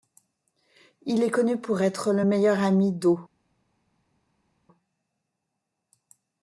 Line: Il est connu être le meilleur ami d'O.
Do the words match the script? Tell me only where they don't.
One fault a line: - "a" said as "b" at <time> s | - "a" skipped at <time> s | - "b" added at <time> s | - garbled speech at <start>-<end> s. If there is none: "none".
- "pour" added at 1.6 s